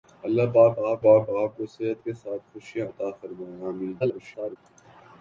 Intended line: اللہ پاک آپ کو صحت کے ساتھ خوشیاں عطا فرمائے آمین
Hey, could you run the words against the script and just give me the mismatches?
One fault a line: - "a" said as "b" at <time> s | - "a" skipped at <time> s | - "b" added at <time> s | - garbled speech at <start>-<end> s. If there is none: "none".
- "پاک آپ" added at 1.0 s
- garbled speech at 4.0-4.6 s